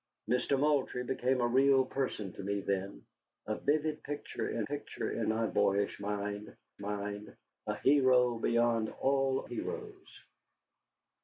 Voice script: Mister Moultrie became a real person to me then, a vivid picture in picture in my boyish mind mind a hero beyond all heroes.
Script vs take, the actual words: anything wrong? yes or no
no